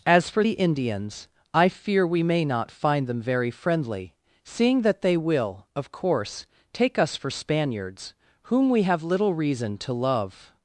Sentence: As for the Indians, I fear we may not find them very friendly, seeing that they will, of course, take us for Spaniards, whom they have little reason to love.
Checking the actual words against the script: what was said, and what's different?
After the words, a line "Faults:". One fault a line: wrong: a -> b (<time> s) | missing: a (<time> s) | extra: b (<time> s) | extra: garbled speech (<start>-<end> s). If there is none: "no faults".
As for the Indians, I fear we may not find them very friendly, seeing that they will, of course, take us for Spaniards, whom we have little reason to love.
Faults:
wrong: they -> we (8.7 s)